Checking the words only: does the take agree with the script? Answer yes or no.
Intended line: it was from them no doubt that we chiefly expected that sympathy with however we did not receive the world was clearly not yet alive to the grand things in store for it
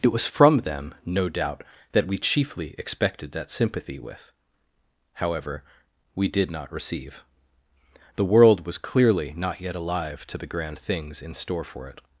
yes